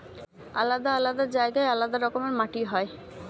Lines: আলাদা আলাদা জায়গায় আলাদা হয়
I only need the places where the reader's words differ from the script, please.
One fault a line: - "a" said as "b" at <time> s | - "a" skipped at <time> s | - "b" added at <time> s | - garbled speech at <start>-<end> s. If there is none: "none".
- "রকমের মাটি" added at 2.0 s